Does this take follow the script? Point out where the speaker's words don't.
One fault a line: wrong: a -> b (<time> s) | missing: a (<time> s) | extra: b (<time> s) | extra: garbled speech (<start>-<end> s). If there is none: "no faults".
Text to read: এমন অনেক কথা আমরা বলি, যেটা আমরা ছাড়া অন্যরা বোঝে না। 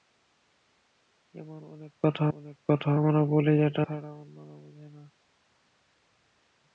extra: অনেক কথা (2.3 s)
missing: আমরা (3.8 s)